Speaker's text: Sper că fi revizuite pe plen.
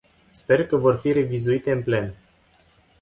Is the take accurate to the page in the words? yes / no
no